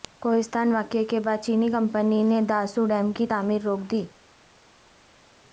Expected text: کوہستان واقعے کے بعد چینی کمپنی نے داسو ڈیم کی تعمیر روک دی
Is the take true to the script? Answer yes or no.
yes